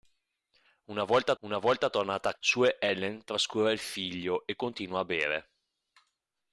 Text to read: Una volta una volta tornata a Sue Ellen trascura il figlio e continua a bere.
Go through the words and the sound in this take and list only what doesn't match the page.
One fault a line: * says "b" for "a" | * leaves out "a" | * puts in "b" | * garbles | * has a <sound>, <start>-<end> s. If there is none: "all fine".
all fine